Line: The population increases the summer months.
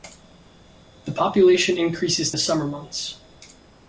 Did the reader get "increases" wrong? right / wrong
right